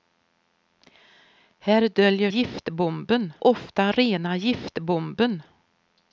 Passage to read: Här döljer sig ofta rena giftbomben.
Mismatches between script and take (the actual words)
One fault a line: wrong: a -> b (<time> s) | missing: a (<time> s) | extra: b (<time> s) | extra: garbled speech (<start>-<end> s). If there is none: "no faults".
wrong: sig -> giftbomben (2.3 s)